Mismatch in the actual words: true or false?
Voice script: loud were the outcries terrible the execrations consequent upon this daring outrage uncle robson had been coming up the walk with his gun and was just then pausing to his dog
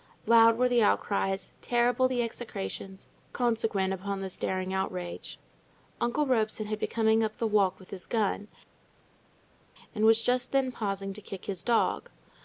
true